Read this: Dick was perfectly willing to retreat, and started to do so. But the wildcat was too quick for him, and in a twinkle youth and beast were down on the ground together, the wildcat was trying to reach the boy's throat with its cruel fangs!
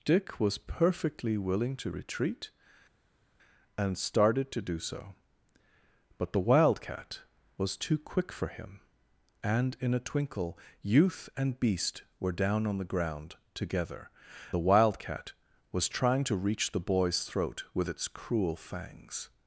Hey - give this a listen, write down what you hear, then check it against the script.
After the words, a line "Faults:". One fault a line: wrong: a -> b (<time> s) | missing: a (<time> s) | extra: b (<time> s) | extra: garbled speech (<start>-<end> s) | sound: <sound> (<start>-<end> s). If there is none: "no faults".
Dick was perfectly willing to retreat, and started to do so. But the wildcat was too quick for him, and in a twinkle youth and beast were down on the ground together, the wildcat was trying to reach the boy's throat with its cruel fangs!
Faults:
no faults